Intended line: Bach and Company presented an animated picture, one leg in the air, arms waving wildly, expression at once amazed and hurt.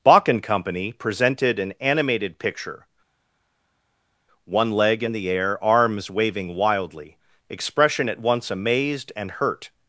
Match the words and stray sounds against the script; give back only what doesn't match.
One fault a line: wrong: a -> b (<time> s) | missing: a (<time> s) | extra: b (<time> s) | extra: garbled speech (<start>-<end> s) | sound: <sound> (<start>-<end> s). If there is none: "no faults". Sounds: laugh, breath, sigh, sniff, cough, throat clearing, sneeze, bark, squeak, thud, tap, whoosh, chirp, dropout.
no faults